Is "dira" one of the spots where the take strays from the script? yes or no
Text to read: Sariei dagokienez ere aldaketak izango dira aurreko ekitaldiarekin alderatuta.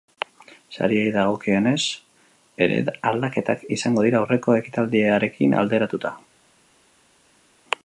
no